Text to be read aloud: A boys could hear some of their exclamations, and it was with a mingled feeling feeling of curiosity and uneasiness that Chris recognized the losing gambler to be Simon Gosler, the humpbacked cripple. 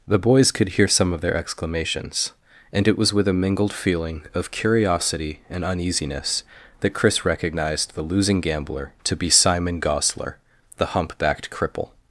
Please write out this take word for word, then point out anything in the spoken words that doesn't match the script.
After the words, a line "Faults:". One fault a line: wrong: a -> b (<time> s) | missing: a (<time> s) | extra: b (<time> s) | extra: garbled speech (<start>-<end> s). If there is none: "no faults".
The boys could hear some of their exclamations, and it was with a mingled feeling of curiosity and uneasiness that Chris recognized the losing gambler to be Simon Gosler, the humpbacked cripple.
Faults:
wrong: A -> The (0.1 s)
missing: feeling (4.2 s)